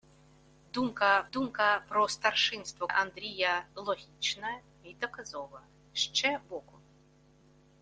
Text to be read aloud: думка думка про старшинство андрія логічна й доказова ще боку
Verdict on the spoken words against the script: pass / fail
pass